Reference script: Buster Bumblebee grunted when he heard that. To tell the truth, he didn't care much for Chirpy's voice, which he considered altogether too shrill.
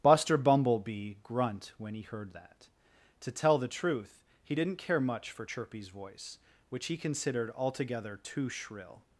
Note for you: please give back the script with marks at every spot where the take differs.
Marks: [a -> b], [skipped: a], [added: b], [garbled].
Buster Bumblebee [grunted -> grunt] when he heard that. To tell the truth, he didn't care much for Chirpy's voice, which he considered altogether too shrill.